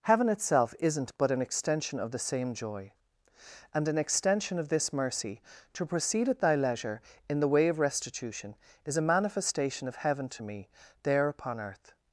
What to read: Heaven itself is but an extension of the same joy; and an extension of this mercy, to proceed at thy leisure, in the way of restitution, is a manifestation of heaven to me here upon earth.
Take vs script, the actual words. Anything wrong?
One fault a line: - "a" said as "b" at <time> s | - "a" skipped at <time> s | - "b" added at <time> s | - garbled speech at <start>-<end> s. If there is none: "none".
- "is" said as "isn't" at 0.8 s
- "here" said as "there" at 11.0 s